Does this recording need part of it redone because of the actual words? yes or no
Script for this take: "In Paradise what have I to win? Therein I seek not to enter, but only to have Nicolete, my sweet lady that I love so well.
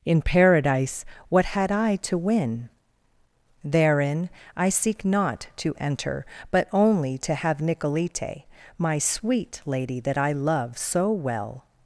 yes